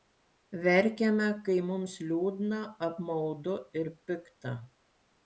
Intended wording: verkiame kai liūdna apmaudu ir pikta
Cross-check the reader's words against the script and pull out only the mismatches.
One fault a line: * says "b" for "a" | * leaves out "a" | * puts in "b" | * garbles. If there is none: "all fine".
* puts in "mums"